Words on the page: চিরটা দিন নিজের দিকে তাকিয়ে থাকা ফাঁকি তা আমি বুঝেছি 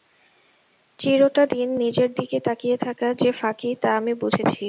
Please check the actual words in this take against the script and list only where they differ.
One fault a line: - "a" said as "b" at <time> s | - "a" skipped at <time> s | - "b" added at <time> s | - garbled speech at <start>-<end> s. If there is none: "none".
- "যে" added at 3.1 s